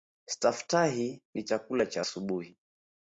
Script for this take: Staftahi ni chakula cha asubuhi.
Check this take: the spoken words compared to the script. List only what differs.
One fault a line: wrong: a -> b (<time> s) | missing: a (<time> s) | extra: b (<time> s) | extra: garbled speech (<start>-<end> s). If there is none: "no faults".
no faults